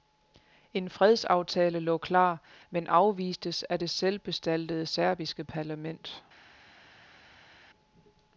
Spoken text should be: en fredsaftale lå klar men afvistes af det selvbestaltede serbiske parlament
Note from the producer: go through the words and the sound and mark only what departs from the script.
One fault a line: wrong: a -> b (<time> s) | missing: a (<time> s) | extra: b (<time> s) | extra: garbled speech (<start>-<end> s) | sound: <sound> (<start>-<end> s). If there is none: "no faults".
no faults